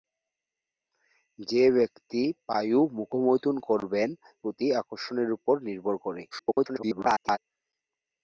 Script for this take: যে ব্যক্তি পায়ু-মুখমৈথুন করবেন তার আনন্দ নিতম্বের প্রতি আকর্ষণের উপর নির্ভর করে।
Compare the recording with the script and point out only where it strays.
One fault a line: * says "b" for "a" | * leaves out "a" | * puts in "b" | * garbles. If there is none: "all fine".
* leaves out "তার আনন্দ নিতম্বের"
* garbles